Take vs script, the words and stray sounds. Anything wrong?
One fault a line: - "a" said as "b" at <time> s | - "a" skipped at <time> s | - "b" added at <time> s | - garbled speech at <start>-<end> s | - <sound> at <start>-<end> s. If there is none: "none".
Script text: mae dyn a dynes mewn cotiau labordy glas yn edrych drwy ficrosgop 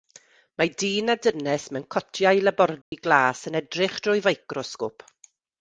- dropout at 2.8-2.9 s